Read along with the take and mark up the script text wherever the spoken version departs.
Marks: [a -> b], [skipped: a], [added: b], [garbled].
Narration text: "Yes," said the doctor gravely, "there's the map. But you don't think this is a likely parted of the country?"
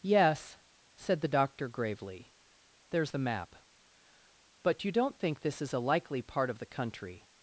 "Yes," said the doctor gravely, "there's the map. But you don't think this is a likely [parted -> part] of the country?"